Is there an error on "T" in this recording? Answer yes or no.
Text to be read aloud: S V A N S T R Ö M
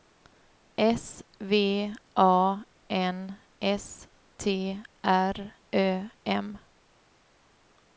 no